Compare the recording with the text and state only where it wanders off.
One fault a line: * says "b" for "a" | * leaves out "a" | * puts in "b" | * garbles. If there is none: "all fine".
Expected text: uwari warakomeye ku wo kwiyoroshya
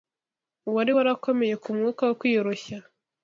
* puts in "mwuka"